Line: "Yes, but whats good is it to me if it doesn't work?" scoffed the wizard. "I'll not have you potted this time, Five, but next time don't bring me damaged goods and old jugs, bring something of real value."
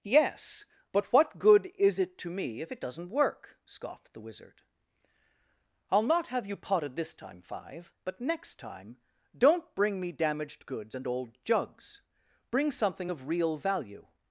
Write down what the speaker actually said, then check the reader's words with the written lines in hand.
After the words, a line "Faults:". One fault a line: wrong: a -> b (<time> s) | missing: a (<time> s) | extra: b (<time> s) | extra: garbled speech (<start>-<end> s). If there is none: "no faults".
"Yes, but what good is it to me if it doesn't work?" scoffed the wizard. "I'll not have you potted this time, Five, but next time don't bring me damaged goods and old jugs, bring something of real value."
Faults:
wrong: whats -> what (1.1 s)